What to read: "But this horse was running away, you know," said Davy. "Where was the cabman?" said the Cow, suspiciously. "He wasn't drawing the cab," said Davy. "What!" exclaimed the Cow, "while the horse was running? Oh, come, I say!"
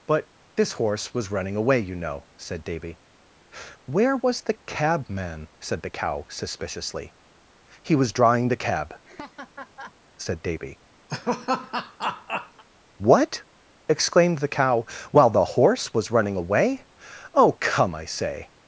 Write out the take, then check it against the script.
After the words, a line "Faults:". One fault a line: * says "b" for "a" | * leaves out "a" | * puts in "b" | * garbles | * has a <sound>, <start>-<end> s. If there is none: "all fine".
"But this horse was running away, you know," said Davy. "Where was the cabman?" said the Cow, suspiciously. "He was drawing the cab," said Davy. "What!" exclaimed the Cow, "while the horse was running away? Oh, come, I say!"
Faults:
* says "was" for "wasn't"
* has a laugh, 9.0-9.9 s
* has a laugh, 11.1-12.6 s
* puts in "away"